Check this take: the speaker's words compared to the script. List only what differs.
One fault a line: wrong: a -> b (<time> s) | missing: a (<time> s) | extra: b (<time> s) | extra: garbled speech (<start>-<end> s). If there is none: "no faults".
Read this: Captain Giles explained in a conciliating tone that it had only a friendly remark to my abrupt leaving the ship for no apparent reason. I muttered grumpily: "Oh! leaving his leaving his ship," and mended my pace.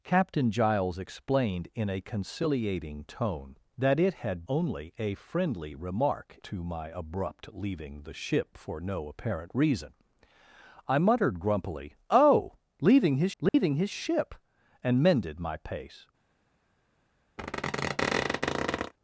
no faults